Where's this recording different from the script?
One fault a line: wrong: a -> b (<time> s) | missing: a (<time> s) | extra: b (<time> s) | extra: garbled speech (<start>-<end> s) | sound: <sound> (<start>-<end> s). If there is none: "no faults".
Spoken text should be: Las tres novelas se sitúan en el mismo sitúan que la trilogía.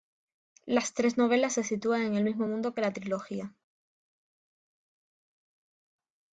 wrong: sitúan -> mundo (2.5 s)